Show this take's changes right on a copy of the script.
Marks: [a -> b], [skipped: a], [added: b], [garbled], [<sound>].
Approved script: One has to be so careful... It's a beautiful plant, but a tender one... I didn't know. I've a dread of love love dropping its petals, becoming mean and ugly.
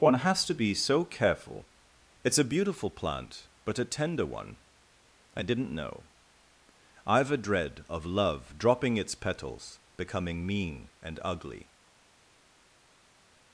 One has to be so careful... It's a beautiful plant, but a tender one... I didn't know. I've a dread of love [skipped: love] dropping its petals, becoming mean and ugly.